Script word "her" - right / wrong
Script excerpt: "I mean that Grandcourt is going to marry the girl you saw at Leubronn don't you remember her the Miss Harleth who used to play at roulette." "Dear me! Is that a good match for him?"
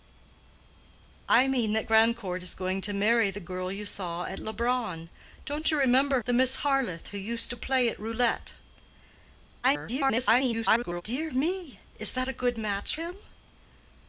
wrong